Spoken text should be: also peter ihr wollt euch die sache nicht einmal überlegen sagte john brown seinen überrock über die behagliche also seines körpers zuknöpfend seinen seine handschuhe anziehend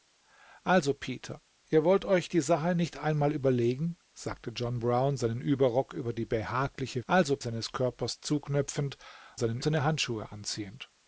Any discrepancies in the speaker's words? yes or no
no